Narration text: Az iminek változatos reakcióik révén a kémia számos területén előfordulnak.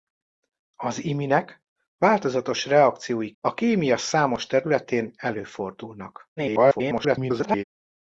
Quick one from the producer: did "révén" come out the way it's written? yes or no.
no